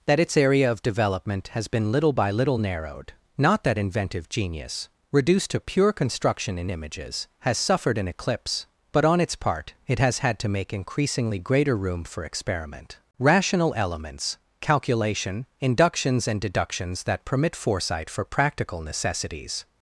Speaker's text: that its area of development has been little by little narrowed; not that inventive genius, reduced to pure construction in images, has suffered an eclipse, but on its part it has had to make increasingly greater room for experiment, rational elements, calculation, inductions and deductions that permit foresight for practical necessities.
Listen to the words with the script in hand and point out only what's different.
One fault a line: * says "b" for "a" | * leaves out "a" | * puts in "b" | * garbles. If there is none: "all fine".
all fine